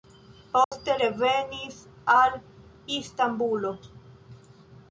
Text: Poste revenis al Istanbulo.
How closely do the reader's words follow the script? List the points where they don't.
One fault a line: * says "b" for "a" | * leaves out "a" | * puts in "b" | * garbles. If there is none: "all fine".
all fine